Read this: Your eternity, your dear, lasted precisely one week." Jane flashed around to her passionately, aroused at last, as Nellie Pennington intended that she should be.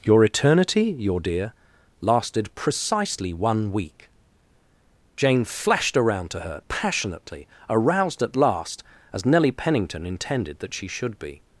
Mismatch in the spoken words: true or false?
false